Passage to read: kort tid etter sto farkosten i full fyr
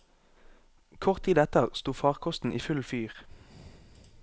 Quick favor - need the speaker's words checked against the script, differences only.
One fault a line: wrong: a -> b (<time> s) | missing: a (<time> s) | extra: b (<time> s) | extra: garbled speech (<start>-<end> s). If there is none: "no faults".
no faults